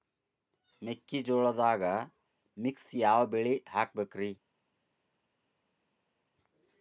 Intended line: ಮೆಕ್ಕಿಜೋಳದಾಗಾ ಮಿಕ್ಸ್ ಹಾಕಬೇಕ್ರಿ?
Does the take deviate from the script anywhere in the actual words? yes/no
yes